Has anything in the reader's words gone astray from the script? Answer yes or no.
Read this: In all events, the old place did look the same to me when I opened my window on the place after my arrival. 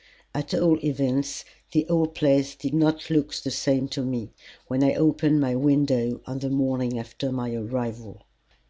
yes